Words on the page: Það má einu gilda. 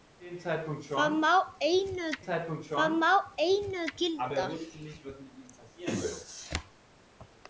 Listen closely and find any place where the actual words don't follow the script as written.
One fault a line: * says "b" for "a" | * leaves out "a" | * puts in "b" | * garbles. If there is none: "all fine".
* puts in "það má einu"